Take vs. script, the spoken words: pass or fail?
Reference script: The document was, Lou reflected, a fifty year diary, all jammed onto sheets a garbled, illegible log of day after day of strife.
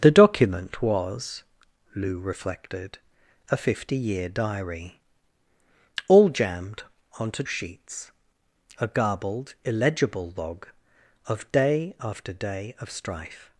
pass